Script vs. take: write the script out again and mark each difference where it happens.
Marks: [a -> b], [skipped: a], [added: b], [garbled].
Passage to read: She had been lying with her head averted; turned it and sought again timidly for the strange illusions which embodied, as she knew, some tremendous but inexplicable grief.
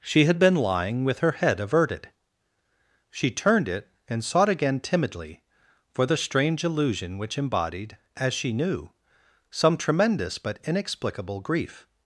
She had been lying with her head averted; [added: she] turned it and sought again timidly for the strange [illusions -> illusion] which embodied, as she knew, some tremendous but inexplicable grief.